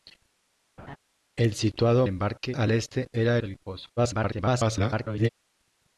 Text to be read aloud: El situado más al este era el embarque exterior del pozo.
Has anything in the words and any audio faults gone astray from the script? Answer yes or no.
yes